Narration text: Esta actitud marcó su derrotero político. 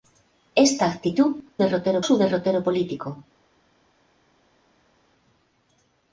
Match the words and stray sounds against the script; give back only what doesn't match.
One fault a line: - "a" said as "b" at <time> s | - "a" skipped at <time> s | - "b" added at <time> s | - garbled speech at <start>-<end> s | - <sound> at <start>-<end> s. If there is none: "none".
- "marcó" said as "derrotero" at 1.6 s